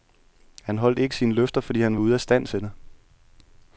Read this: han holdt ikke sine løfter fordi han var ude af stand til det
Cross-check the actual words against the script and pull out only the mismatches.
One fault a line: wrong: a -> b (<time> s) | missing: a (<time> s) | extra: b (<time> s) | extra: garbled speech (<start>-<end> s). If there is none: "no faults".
no faults